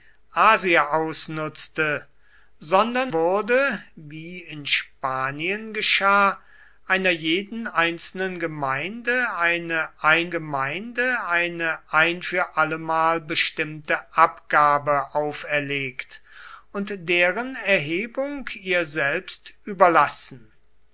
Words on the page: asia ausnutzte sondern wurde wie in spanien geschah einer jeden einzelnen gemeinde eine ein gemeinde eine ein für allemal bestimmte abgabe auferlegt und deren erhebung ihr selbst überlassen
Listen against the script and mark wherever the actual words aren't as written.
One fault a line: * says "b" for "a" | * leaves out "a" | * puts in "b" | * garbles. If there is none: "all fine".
all fine